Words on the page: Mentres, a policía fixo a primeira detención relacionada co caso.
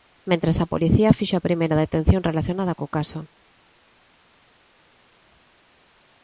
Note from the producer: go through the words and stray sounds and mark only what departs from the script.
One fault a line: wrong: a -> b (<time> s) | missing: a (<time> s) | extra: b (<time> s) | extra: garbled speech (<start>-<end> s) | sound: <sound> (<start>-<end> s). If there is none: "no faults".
no faults